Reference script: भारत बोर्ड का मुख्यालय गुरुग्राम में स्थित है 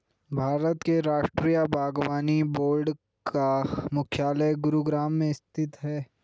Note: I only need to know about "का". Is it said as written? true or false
true